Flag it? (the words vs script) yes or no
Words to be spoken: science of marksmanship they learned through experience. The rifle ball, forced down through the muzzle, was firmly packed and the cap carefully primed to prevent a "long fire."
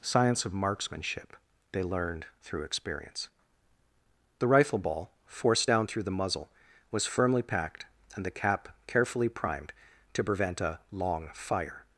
no